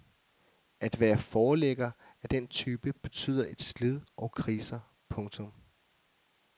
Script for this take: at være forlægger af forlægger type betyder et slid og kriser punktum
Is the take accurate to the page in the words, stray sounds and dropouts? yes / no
no